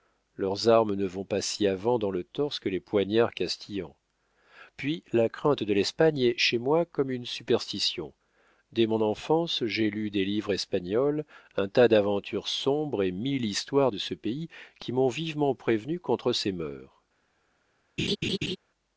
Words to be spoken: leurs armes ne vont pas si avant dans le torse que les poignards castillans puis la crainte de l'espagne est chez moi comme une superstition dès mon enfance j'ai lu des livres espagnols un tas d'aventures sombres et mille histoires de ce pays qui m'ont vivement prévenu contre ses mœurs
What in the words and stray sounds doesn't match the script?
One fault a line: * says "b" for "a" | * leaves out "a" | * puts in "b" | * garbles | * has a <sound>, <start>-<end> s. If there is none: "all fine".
* has a laugh, 18.0-18.6 s